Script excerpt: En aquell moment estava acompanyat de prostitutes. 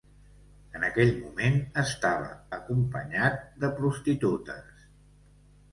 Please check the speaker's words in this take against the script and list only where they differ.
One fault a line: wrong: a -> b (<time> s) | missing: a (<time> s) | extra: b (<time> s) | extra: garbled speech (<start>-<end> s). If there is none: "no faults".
no faults